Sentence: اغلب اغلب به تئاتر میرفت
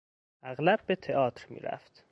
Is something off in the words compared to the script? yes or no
yes